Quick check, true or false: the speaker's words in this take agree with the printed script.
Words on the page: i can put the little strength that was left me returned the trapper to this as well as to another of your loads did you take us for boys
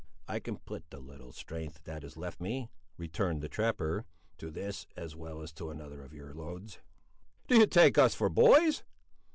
false